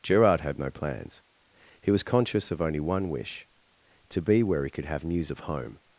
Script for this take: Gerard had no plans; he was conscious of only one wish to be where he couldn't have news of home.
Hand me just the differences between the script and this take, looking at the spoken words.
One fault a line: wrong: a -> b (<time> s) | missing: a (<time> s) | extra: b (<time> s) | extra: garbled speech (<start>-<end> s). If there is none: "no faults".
wrong: couldn't -> could (4.7 s)